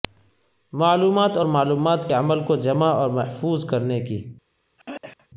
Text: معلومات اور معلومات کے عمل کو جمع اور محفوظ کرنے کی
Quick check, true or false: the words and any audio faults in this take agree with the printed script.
false